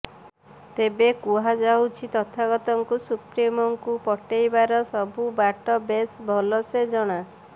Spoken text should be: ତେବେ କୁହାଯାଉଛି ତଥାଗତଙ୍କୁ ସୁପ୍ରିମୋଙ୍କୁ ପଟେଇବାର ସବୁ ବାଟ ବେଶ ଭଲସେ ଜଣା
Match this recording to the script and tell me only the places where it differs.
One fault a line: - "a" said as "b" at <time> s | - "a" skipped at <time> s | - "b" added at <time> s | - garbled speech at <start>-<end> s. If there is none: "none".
none